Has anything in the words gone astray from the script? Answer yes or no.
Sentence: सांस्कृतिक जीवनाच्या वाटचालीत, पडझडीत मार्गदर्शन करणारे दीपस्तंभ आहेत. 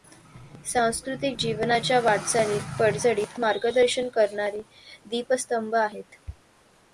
no